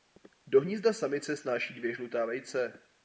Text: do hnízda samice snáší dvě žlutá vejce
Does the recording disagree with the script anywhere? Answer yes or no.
no